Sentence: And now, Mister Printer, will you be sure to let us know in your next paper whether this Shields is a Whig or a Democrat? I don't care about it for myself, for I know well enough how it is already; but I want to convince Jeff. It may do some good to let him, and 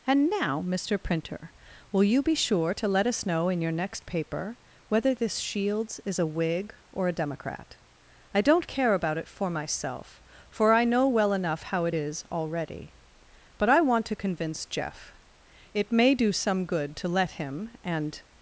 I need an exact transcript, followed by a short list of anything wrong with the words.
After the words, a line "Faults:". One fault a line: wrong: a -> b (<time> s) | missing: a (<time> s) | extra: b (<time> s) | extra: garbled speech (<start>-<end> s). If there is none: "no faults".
And now, Mister Printer, will you be sure to let us know in your next paper whether this Shields is a Whig or a Democrat? I don't care about it for myself, for I know well enough how it is already; but I want to convince Jeff. It may do some good to let him, and
Faults:
no faults